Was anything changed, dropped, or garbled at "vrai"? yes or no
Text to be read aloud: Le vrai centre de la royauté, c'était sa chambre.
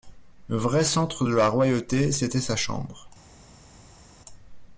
no